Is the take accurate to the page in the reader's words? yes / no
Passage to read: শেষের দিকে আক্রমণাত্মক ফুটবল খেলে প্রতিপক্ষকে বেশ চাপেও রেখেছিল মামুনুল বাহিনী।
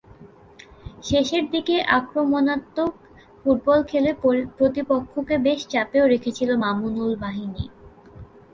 yes